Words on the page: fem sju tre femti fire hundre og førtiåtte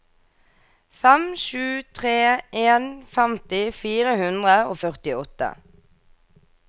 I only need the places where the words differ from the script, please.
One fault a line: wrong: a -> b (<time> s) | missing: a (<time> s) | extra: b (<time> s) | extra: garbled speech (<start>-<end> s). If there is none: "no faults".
extra: en (2.6 s)